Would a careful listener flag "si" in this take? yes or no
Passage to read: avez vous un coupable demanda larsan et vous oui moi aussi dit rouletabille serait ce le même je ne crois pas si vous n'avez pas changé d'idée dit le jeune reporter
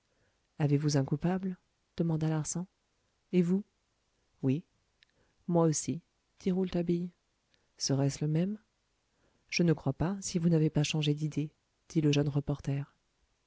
no